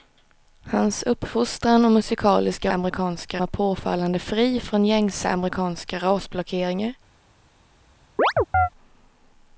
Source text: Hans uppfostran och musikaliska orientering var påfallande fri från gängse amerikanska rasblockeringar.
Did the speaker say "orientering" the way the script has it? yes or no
no